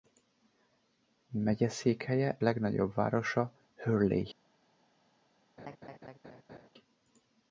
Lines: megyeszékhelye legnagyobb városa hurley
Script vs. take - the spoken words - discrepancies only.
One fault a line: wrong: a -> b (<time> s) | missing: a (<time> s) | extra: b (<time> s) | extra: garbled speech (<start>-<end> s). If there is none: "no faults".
no faults